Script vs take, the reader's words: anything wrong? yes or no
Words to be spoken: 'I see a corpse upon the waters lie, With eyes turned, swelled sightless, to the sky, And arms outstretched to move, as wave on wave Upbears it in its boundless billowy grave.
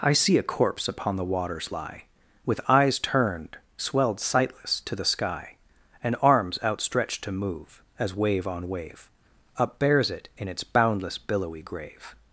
no